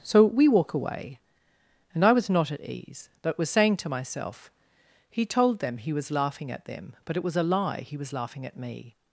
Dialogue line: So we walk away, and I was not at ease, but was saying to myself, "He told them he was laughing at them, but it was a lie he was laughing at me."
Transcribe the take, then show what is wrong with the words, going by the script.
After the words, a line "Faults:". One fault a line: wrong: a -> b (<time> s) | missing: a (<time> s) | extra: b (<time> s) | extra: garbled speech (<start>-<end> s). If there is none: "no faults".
So we walk away, and I was not at ease, but was saying to myself, "He told them he was laughing at them, but it was a lie he was laughing at me."
Faults:
no faults